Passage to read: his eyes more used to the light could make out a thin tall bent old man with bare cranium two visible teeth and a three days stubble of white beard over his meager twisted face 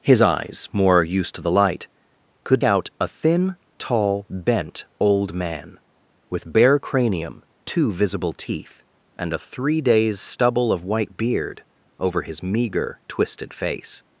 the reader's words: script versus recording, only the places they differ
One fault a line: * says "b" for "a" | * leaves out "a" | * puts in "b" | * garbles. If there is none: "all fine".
* leaves out "make"